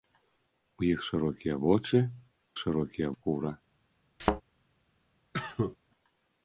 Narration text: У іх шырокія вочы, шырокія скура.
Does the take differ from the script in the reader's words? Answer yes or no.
no